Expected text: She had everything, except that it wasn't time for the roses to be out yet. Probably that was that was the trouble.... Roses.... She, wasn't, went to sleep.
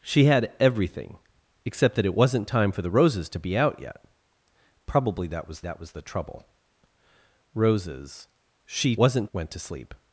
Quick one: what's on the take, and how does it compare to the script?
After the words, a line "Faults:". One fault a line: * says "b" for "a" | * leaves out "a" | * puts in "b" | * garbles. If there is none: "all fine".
She had everything, except that it wasn't time for the roses to be out yet. Probably that was that was the trouble.... Roses.... She, wasn't, went to sleep.
Faults:
all fine